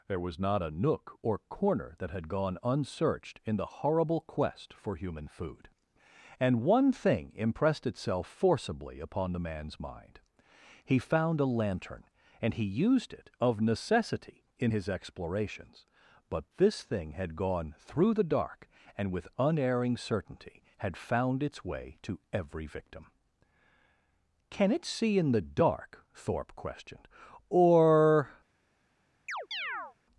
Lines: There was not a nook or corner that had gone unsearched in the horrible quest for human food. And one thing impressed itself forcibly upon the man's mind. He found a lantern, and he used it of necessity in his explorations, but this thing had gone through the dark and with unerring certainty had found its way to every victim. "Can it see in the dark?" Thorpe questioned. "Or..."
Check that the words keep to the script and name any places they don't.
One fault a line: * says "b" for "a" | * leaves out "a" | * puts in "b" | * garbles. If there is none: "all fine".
all fine